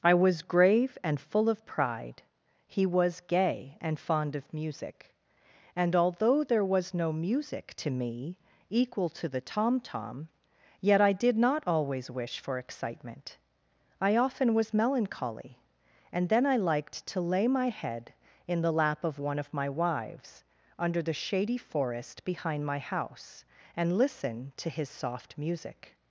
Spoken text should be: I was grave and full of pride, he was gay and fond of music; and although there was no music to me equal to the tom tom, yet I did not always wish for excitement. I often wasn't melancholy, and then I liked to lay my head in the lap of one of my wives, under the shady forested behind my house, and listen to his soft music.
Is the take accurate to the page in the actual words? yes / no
no